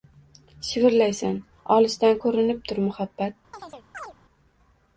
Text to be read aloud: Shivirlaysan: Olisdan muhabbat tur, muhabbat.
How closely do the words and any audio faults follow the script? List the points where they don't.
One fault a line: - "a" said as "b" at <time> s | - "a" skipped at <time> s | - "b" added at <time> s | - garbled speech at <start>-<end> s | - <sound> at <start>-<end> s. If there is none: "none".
- "muhabbat" said as "ko‘rinib" at 2.2 s
- chirp at 3.5-4.1 s